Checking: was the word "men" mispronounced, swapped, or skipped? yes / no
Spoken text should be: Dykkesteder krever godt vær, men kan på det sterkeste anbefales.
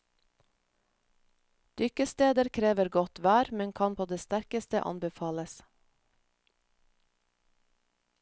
no